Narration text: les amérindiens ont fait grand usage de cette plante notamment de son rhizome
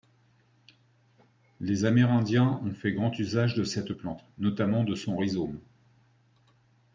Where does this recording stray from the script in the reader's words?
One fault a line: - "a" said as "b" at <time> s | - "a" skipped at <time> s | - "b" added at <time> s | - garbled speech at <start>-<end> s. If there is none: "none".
none